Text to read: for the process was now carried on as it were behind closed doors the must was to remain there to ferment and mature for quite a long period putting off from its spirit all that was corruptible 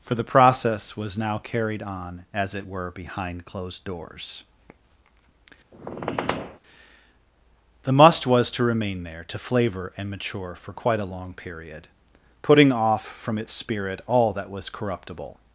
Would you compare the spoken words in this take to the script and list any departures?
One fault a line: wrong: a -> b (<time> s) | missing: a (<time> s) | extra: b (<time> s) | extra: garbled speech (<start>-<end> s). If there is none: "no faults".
wrong: ferment -> flavour (9.4 s)